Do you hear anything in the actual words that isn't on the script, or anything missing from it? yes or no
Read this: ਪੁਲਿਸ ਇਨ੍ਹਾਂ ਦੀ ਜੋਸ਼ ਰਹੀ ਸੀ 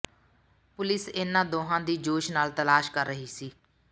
yes